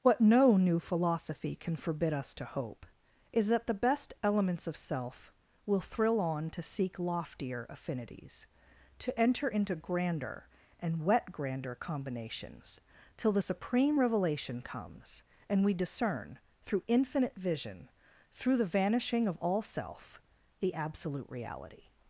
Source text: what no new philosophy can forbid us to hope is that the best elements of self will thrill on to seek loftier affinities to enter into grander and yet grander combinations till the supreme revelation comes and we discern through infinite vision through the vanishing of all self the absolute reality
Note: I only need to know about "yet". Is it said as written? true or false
false